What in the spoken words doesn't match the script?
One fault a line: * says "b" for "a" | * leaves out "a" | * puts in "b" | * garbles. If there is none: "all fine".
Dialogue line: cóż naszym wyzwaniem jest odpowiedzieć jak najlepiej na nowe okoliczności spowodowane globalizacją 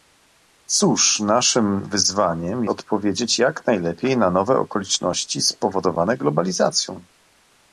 * leaves out "jest"